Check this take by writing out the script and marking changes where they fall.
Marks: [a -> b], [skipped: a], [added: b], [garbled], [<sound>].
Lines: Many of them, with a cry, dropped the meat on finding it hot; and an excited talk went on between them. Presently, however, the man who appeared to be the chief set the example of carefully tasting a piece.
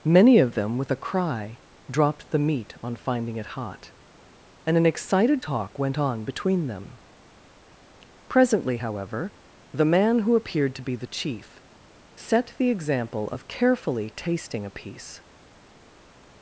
Many of them, with a cry, dropped the meat on finding it hot; and an excited talk went on between them. Presently, however, the man who appeared to be the chief set the example of carefully tasting a piece.